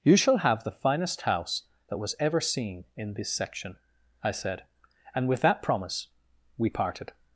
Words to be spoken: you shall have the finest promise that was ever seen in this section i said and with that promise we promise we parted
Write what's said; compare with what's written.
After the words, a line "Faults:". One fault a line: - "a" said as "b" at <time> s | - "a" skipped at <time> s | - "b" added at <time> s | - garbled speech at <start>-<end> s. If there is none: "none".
you shall have the finest house that was ever seen in this section i said and with that promise we parted
Faults:
- "promise" said as "house" at 1.2 s
- "promise we" skipped at 6.7 s